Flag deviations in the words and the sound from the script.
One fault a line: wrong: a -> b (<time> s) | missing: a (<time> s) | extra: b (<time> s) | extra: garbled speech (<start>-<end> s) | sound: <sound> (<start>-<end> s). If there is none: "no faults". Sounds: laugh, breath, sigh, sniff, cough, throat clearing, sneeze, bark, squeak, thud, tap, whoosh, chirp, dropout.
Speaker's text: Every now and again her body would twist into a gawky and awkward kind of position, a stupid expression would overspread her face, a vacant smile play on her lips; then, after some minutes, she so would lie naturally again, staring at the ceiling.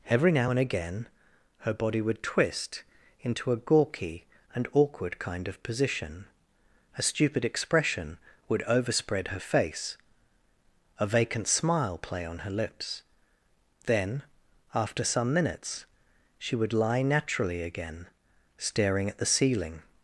missing: so (16.6 s)